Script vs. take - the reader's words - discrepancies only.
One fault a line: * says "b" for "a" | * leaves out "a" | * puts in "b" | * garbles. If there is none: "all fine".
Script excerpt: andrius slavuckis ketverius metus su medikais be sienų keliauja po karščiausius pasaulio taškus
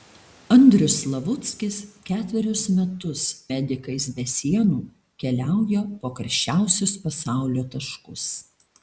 * leaves out "su"